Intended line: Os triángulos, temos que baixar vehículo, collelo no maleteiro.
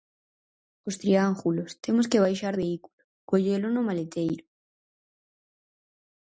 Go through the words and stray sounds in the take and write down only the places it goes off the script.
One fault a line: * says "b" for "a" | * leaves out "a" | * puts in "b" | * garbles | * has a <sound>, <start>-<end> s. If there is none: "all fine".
all fine